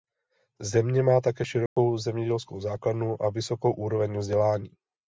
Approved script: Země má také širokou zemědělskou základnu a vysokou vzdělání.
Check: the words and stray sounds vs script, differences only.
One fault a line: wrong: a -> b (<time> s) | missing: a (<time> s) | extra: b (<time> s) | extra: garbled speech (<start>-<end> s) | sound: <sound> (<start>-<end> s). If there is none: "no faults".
sound: dropout (1.7-1.8 s)
extra: úroveň (3.7 s)